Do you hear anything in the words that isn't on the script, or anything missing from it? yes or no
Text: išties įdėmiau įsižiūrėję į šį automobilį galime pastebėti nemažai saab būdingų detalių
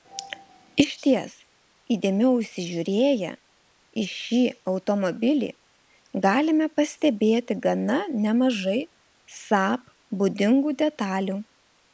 yes